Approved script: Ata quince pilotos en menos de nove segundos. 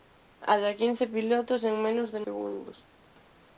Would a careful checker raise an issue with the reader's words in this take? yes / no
yes